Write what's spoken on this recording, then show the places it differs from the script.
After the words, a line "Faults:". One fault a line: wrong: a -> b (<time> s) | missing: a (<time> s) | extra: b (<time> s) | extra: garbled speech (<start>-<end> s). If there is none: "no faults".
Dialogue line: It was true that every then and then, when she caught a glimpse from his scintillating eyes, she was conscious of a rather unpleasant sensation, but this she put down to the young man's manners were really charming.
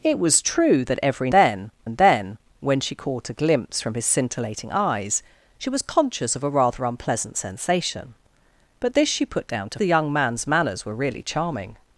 It was true that every then and then, when she caught a glimpse from his scintillating eyes, she was conscious of a rather unpleasant sensation, but this she put down to the young man's manners were really charming.
Faults:
no faults